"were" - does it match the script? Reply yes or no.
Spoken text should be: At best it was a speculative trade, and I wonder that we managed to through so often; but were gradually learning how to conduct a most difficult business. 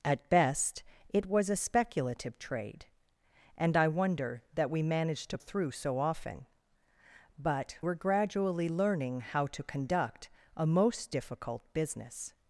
yes